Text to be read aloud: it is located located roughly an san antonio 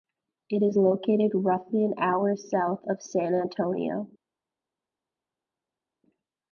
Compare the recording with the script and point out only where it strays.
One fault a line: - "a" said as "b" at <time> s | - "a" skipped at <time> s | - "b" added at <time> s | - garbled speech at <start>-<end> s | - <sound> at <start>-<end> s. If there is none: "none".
- "located" skipped at 1.3 s
- "hour south of" added at 2.0 s